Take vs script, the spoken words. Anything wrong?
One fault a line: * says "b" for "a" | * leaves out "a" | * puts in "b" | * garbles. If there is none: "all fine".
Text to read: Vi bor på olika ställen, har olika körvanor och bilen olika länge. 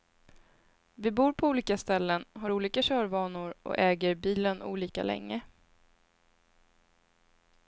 * puts in "äger"